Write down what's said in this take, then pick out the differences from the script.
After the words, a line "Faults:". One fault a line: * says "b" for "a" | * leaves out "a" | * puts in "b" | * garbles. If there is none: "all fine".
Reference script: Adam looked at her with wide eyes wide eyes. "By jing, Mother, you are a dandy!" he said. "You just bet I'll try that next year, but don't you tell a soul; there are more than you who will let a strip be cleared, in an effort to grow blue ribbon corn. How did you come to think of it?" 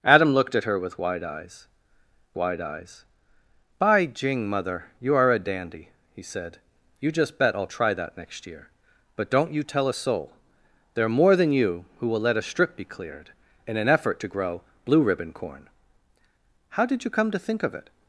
Adam looked at her with wide eyes wide eyes. "By jing, Mother, you are a dandy!" he said. "You just bet I'll try that next year, but don't you tell a soul; there are more than you who will let a strip be cleared, in an effort to grow blue ribbon corn. How did you come to think of it?"
Faults:
all fine